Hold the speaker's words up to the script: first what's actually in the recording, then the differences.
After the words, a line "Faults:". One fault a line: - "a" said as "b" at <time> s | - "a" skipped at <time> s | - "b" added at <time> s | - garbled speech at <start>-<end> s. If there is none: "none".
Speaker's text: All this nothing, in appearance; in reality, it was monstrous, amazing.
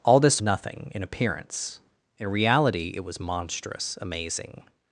All this nothing, in appearance; in reality, it was monstrous, amazing.
Faults:
none